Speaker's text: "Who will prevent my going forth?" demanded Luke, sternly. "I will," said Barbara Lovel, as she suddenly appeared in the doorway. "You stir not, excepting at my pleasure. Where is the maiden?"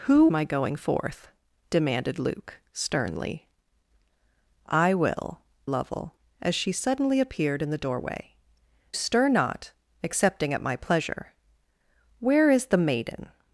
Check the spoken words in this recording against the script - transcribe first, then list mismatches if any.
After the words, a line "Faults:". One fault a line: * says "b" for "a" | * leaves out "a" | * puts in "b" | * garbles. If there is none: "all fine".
"Who my going forth?" demanded Luke, sternly. "I will," Lovel, as she suddenly appeared in the doorway. "Stir not, excepting at my pleasure. Where is the maiden?"
Faults:
* leaves out "will prevent"
* leaves out "said Barbara"
* leaves out "You"